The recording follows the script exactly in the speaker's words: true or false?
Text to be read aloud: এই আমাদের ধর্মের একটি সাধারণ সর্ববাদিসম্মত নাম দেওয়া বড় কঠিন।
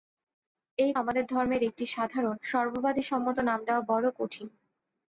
true